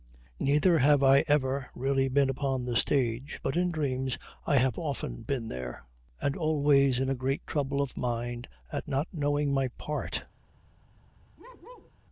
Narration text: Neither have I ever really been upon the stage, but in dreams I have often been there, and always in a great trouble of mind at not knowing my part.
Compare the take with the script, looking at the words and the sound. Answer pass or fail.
fail